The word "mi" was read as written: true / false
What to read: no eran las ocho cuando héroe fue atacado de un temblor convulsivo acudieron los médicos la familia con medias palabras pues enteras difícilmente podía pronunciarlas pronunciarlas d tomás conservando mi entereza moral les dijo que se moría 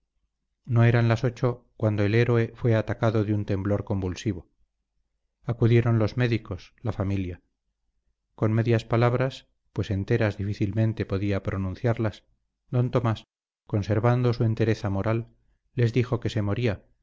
false